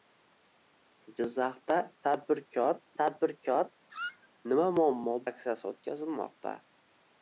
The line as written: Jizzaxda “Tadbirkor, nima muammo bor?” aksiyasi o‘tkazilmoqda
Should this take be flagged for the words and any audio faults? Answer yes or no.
yes